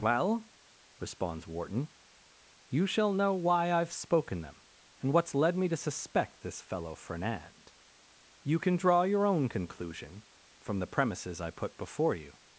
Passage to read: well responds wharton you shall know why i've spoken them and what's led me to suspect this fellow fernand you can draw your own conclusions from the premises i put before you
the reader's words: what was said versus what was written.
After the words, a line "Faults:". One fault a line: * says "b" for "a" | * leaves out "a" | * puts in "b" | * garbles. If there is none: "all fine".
well responds wharton you shall know why i've spoken them and what's led me to suspect this fellow fernand you can draw your own conclusion from the premises i put before you
Faults:
* says "conclusion" for "conclusions"